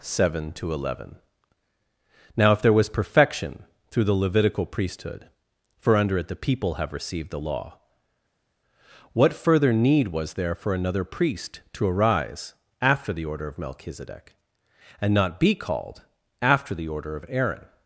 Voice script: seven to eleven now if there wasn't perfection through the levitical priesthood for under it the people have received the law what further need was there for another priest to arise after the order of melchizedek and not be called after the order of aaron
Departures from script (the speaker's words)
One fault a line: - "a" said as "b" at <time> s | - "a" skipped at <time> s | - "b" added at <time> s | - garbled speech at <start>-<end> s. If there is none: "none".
- "wasn't" said as "was" at 2.7 s